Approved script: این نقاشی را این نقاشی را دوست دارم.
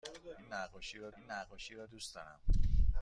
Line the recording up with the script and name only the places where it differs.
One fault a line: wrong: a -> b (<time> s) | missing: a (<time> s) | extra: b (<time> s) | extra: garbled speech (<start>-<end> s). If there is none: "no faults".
no faults